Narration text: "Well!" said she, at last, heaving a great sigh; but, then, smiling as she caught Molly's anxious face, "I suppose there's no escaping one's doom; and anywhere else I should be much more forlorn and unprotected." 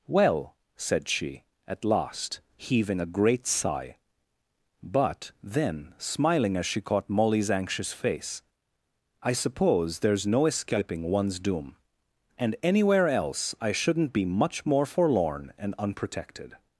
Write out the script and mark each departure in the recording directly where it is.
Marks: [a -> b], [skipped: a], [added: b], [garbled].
"Well!" said she, at last, heaving a great sigh; but, then, smiling as she caught Molly's anxious face, "I suppose there's no escaping one's doom; and anywhere else I [should -> shouldn't] be much more forlorn and unprotected."